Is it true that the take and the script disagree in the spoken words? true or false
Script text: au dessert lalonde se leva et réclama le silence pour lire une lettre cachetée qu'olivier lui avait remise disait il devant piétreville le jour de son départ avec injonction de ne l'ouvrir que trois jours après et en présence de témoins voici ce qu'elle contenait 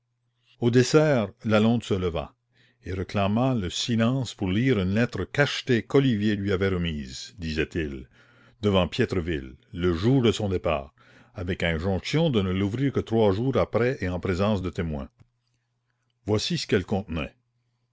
false